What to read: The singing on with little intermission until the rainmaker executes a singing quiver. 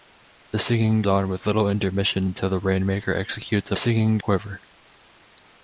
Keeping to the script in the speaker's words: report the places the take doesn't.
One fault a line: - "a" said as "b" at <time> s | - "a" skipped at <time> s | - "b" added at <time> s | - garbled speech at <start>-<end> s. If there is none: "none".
none